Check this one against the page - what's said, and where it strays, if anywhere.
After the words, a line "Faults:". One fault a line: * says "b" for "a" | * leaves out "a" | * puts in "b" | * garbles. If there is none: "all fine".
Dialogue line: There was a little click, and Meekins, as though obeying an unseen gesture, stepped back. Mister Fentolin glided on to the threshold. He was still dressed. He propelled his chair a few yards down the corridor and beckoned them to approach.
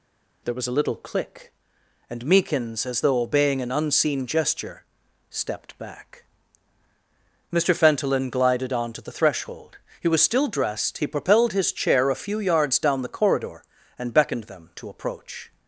There was a little click, and Meekins, as though obeying an unseen gesture, stepped back. Mister Fentolin glided on to the threshold. He was still dressed. He propelled his chair a few yards down the corridor and beckoned them to approach.
Faults:
all fine